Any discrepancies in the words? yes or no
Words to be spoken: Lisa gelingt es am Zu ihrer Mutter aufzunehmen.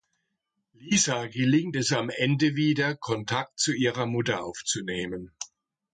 yes